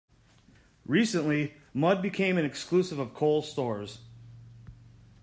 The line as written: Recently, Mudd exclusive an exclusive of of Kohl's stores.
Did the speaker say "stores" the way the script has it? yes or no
yes